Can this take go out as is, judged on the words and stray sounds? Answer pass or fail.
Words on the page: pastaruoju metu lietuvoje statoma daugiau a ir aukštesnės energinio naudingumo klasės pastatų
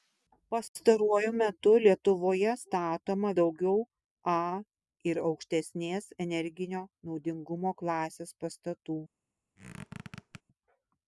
fail